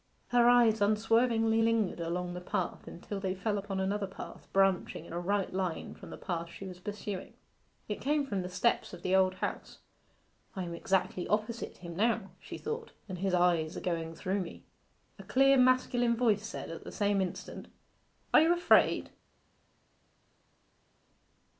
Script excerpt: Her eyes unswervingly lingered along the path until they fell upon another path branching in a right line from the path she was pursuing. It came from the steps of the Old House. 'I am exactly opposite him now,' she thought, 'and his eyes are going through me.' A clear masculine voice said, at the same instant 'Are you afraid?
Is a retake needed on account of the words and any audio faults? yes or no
no